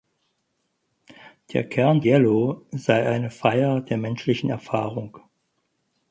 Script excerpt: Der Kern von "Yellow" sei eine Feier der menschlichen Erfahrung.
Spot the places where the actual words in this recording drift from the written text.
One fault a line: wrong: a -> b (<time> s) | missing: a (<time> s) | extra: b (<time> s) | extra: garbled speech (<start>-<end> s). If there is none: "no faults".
missing: von (2.0 s)